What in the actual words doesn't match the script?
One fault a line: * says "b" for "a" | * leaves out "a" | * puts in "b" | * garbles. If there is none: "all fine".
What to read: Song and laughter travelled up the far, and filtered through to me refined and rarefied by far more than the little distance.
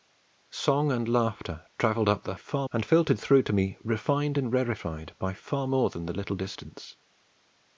all fine